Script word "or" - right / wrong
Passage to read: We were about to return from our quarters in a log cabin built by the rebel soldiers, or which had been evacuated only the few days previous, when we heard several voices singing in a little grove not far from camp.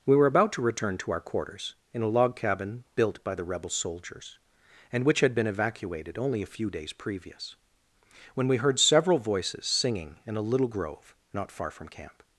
wrong